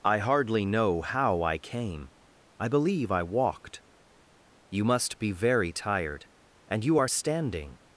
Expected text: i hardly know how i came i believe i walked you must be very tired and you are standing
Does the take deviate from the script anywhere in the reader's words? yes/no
no